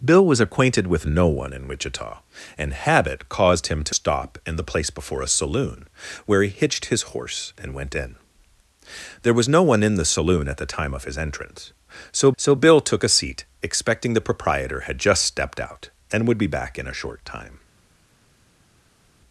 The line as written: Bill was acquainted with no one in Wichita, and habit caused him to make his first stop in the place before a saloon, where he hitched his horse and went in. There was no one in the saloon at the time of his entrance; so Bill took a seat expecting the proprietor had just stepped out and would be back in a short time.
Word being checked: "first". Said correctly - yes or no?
no